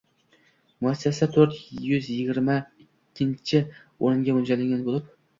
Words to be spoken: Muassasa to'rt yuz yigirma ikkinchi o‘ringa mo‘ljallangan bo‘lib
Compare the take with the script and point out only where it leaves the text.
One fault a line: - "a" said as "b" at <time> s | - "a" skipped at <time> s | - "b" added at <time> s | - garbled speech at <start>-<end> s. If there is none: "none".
none